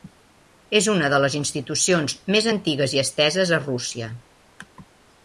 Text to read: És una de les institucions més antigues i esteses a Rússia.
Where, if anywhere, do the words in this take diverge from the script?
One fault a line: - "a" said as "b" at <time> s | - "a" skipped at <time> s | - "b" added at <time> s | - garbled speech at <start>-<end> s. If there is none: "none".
none